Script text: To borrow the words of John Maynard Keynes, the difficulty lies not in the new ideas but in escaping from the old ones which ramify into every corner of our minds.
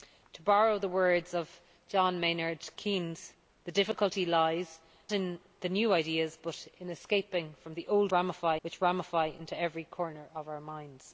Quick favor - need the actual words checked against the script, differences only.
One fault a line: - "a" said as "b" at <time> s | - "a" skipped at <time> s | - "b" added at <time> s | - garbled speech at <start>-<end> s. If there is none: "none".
- "not" skipped at 4.8 s
- "ones" said as "ramify" at 8.1 s